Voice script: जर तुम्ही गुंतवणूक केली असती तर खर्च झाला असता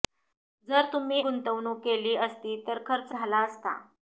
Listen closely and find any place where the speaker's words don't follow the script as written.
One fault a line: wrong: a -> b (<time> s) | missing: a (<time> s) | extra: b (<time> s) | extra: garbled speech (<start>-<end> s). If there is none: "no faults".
no faults